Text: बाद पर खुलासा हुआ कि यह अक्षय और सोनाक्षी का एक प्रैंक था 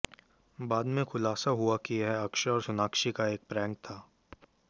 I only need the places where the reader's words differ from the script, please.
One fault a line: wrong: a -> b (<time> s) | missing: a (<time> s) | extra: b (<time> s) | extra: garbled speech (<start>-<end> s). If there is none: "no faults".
wrong: पर -> में (0.8 s)